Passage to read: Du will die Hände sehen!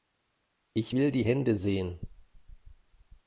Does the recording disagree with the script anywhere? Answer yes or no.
yes